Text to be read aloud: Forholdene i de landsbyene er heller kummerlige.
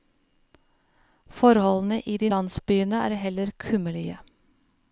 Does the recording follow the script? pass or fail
pass